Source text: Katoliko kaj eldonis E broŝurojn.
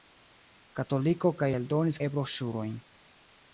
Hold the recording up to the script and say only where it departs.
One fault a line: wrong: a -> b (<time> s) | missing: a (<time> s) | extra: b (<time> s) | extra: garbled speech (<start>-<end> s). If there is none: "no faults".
no faults